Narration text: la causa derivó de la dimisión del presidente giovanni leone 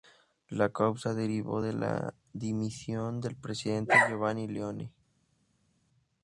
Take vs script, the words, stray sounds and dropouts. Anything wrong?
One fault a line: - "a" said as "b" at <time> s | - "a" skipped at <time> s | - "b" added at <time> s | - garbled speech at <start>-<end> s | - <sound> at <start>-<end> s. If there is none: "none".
none